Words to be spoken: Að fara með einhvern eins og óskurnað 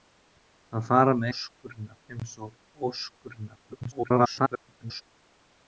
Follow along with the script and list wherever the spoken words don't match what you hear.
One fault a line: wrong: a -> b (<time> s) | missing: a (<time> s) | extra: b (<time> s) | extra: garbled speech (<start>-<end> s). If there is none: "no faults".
wrong: einhvern -> óskurnað (1.3 s)
extra: garbled speech (3.7-5.0 s)